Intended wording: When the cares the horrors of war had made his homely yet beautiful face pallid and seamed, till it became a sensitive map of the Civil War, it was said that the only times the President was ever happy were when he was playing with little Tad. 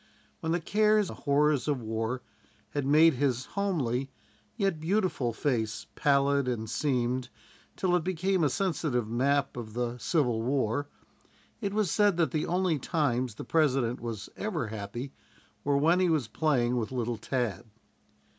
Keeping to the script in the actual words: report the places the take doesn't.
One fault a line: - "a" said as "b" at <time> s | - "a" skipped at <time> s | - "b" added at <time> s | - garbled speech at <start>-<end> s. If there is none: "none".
none